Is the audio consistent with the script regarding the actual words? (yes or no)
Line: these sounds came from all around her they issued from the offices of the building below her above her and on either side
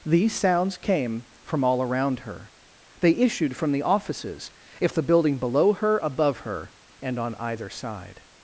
no